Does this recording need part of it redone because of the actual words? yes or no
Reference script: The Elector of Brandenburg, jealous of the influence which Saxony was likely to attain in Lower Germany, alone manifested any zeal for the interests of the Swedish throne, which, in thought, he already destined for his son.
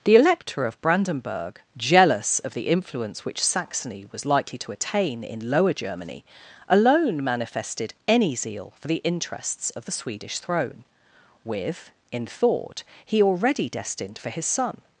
yes